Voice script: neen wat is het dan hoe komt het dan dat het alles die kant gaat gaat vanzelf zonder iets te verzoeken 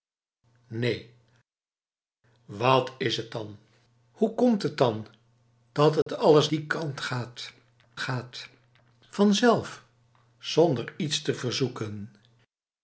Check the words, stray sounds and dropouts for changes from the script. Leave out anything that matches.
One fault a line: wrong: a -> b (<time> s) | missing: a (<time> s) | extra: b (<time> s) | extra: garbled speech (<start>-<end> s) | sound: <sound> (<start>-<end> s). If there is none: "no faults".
sound: dropout (6.0-6.1 s)